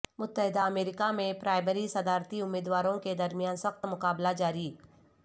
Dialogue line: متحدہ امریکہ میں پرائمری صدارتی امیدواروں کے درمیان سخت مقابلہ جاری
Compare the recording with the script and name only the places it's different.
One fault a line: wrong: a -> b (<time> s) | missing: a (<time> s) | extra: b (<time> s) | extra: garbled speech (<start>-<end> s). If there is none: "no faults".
no faults